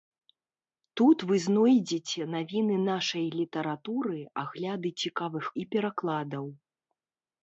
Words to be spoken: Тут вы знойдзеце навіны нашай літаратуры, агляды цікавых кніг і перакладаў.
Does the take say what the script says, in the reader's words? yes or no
no